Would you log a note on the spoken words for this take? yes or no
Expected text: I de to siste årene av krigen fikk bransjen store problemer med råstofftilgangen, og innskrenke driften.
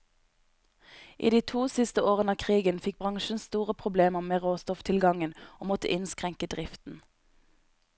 yes